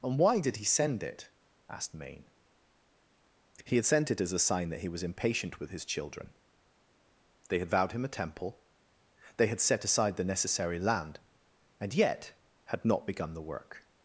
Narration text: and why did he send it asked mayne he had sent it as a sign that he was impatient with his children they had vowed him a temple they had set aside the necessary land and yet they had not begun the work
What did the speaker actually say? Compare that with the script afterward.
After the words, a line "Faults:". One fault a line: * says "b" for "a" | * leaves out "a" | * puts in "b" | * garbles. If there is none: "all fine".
and why did he send it asked mayne he had sent it as a sign that he was impatient with his children they had vowed him a temple they had set aside the necessary land and yet had not begun the work
Faults:
* leaves out "they"